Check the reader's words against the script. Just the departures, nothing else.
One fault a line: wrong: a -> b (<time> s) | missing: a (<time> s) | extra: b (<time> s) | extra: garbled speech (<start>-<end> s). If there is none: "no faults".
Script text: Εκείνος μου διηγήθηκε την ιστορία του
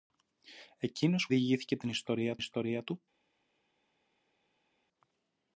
missing: μου (1.3 s)
extra: ιστορία (2.4 s)